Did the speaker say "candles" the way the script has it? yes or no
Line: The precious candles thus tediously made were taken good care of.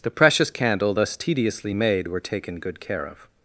no